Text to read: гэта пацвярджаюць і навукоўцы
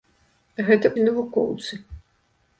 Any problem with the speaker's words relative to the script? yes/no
yes